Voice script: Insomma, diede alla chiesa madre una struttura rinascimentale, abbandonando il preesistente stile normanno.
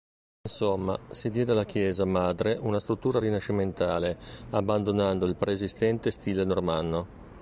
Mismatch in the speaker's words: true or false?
true